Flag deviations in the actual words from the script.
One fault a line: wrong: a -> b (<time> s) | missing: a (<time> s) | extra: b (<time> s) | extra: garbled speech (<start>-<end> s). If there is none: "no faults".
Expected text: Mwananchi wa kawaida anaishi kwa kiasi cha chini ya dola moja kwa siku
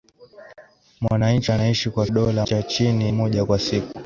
missing: wa kawaida (1.5 s)
wrong: kiasi -> dola (2.1 s)
missing: ya dola (3.1 s)